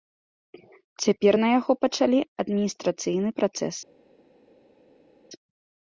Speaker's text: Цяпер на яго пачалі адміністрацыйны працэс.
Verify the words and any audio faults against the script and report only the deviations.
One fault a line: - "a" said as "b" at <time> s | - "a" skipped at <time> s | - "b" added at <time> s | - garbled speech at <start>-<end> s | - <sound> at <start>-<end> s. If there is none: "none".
none